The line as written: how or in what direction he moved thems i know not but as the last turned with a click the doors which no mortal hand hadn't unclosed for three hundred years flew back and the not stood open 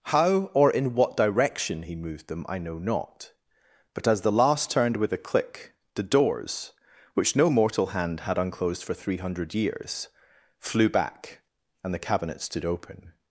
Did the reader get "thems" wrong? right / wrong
wrong